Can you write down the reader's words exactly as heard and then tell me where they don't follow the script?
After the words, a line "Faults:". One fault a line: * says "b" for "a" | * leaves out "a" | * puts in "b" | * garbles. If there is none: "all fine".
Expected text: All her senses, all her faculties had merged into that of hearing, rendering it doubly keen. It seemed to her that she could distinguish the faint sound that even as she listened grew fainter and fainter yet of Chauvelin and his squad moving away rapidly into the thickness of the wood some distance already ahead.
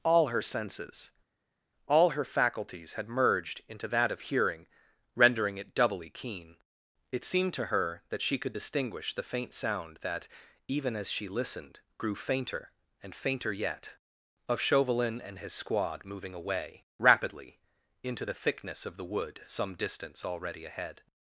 All her senses, all her faculties had merged into that of hearing, rendering it doubly keen. It seemed to her that she could distinguish the faint sound that even as she listened grew fainter and fainter yet of Chauvelin and his squad moving away rapidly into the thickness of the wood some distance already ahead.
Faults:
all fine